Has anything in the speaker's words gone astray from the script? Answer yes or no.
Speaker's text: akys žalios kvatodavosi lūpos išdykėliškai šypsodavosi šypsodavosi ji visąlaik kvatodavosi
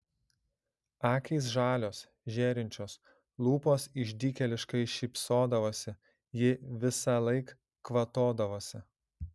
yes